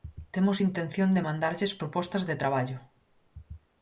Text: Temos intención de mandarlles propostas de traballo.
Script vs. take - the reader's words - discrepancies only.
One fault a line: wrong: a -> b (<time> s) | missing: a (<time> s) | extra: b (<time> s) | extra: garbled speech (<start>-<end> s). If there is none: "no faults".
no faults